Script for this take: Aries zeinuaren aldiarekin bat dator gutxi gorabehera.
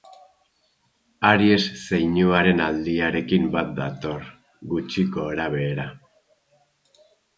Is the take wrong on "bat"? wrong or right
right